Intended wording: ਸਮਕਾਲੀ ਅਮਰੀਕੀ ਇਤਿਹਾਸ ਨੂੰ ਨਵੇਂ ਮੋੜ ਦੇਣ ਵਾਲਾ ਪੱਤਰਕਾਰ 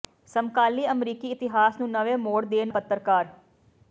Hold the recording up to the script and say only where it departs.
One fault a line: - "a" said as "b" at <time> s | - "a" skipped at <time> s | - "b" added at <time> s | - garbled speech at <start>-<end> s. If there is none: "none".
- "ਵਾਲਾ" skipped at 2.7 s